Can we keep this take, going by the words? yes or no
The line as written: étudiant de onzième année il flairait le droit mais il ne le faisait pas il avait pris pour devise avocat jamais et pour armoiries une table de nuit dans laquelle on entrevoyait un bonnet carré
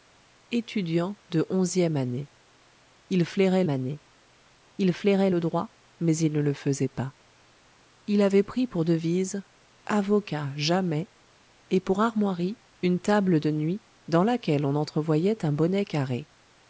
no